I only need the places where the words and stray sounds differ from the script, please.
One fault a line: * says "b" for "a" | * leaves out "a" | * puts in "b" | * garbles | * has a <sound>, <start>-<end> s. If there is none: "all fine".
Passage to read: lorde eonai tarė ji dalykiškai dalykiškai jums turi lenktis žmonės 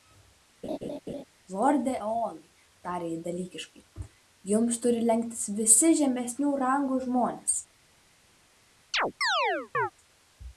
* has a laugh, 0.6-1.2 s
* leaves out "dalykiškai"
* puts in "visi žemesnių rangų"
* has a chirp, 8.9-9.9 s